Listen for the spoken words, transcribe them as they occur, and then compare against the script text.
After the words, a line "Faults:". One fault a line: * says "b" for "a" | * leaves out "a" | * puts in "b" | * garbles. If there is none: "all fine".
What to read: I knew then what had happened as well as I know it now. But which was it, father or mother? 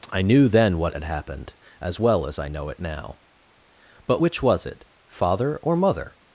I knew then what had happened as well as I know it now. But which was it, father or mother?
Faults:
all fine